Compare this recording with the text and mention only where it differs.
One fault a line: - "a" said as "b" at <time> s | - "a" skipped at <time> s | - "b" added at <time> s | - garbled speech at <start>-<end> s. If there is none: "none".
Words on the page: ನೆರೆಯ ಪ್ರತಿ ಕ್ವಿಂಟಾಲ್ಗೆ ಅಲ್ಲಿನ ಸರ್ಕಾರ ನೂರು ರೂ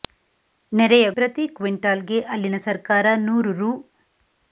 none